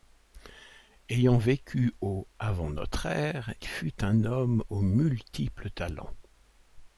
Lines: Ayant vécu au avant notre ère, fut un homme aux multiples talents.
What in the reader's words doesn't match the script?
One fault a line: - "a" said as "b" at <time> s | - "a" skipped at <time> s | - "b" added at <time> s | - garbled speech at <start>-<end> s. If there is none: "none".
none